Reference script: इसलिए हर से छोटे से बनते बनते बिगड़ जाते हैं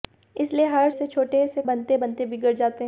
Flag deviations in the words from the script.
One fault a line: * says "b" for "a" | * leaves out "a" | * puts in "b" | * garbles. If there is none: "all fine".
all fine